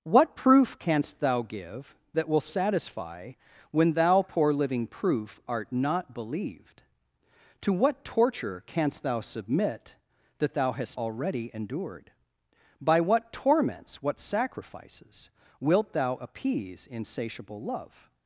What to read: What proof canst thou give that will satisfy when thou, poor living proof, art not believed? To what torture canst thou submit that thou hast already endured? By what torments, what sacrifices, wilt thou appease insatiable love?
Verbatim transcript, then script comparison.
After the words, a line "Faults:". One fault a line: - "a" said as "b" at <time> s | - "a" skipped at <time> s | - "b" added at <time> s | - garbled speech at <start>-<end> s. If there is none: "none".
What proof canst thou give that will satisfy when thou, poor living proof, art not believed? To what torture canst thou submit that thou hast already endured? By what torments, what sacrifices, wilt thou appease insatiable love?
Faults:
none